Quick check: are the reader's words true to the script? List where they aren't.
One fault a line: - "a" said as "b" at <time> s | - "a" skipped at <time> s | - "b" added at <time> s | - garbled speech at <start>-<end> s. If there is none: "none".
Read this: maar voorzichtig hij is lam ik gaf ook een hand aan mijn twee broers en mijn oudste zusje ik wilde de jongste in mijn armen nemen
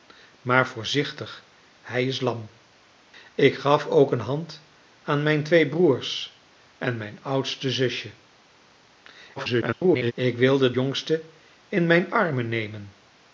- garbled speech at 9.4-10.1 s
- "de" skipped at 10.7 s